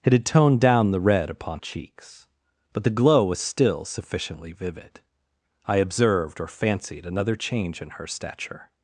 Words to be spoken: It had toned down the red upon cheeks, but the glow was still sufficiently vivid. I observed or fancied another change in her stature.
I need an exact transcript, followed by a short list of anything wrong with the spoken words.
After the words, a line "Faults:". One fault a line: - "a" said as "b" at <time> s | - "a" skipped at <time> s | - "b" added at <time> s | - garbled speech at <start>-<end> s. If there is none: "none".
It had toned down the red upon cheeks, but the glow was still sufficiently vivid. I observed or fancied another change in her stature.
Faults:
none